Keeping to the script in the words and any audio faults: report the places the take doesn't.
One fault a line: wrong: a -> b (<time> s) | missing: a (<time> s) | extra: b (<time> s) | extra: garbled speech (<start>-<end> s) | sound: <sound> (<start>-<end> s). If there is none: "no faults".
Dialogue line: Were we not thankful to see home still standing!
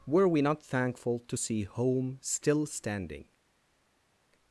no faults